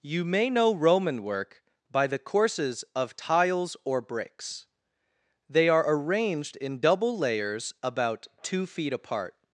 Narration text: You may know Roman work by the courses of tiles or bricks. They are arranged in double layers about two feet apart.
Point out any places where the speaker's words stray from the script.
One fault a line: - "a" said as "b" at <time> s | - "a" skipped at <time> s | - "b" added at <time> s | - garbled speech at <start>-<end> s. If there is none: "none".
none